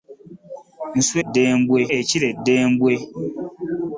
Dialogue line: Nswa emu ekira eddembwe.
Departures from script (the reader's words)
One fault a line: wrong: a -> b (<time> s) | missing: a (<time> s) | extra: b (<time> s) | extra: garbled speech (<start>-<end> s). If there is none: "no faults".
wrong: emu -> eddembwe (1.2 s)